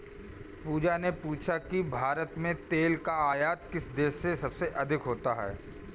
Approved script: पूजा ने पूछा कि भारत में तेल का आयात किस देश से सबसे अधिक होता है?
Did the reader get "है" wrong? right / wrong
right